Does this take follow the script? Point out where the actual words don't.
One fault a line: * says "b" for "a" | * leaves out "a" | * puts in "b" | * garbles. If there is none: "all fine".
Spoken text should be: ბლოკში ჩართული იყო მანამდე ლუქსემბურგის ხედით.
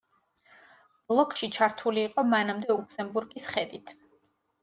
all fine